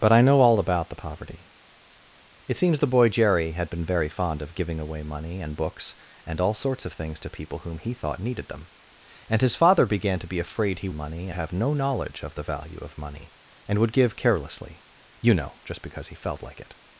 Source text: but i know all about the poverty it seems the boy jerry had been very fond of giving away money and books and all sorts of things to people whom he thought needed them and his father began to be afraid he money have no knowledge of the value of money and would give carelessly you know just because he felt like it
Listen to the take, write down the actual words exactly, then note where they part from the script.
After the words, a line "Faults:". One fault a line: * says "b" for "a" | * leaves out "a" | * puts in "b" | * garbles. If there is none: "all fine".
but i know all about the poverty it seems the boy jerry had been very fond of giving away money and books and all sorts of things to people whom he thought needed them and his father began to be afraid he money have no knowledge of the value of money and would give carelessly you know just because he felt like it
Faults:
all fine